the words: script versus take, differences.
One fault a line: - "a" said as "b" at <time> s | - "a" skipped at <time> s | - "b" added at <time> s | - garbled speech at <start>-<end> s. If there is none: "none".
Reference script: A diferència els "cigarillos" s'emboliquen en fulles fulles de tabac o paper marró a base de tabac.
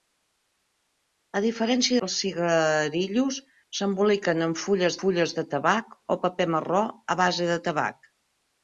none